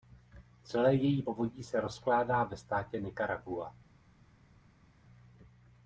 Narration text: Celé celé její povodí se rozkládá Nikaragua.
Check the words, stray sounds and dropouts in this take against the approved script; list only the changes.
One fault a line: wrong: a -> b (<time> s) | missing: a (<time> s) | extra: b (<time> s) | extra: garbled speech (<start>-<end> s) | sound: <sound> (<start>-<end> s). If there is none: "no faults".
missing: celé (0.9 s)
extra: ve státě (2.4 s)